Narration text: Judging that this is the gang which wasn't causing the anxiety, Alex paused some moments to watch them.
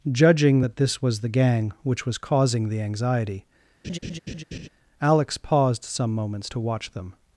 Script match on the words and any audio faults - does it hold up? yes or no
no